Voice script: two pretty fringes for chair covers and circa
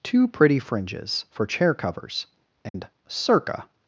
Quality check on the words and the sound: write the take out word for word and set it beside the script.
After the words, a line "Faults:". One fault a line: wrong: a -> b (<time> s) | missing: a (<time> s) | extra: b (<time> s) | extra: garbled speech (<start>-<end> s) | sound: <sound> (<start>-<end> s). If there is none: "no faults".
two pretty fringes for chair covers and circa
Faults:
sound: dropout (2.7-2.7 s)